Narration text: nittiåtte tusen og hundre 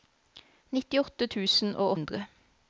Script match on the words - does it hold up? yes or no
yes